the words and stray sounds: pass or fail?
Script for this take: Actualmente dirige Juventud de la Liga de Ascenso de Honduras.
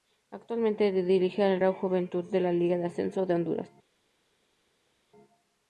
fail